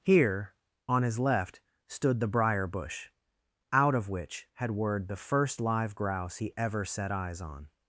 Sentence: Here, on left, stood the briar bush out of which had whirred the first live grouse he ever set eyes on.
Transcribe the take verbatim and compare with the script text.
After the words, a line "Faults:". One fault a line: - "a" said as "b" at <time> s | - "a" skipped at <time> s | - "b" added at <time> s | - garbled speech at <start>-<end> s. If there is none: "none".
Here, on his left, stood the briar bush out of which had whirred the first live grouse he ever set eyes on.
Faults:
- "his" added at 1.0 s